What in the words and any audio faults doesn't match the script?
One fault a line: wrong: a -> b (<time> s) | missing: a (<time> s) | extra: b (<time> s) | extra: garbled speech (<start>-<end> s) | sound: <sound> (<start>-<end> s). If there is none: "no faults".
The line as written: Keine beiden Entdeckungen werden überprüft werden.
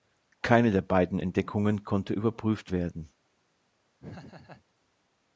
extra: der (0.7 s)
wrong: werden -> konnte (1.8 s)
sound: laugh (4.0-4.6 s)